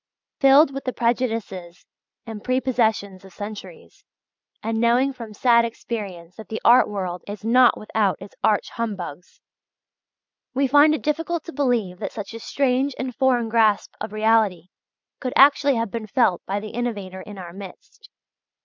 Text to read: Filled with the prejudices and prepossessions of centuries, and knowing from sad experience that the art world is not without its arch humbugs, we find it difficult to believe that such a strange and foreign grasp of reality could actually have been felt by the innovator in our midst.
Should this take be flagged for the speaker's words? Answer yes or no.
no